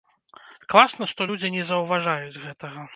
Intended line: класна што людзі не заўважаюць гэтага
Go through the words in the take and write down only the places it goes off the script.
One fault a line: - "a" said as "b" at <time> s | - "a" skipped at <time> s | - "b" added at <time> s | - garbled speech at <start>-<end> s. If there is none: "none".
none